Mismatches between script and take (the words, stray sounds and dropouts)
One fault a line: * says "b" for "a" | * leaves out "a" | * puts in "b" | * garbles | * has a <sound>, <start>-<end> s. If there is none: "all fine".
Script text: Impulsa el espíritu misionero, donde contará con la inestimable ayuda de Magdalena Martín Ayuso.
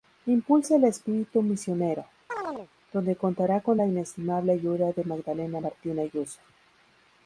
* has a chirp, 2.3-2.7 s